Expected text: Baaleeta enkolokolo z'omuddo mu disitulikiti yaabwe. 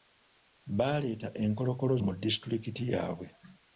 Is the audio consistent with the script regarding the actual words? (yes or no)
no